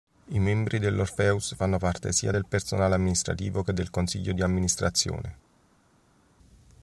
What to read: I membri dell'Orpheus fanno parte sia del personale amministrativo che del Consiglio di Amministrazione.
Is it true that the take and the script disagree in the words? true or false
false